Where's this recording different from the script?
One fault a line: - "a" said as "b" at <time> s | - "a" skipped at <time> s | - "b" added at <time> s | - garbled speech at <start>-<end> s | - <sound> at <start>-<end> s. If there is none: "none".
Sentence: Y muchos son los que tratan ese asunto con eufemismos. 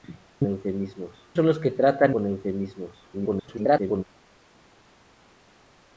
- "muchos" said as "eufemismos" at 0.5 s
- "ese asunto" skipped at 2.2 s
- garbled speech at 3.1-4.0 s